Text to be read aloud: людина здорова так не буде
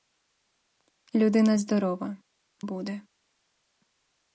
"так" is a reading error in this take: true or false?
true